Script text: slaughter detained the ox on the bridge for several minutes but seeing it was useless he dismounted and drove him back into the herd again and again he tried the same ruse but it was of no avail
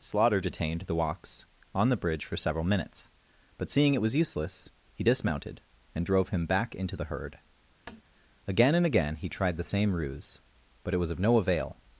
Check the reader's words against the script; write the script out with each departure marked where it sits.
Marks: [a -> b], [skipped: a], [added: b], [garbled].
slaughter detained the ox on the bridge for several minutes but seeing it was useless he dismounted and drove him back into the herd again and again he tried the same ruse but it was of no avail